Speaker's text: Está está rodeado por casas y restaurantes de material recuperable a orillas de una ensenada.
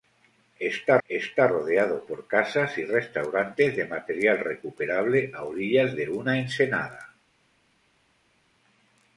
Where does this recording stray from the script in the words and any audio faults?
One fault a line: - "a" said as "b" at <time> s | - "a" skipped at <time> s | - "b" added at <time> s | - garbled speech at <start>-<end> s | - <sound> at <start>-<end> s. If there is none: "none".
none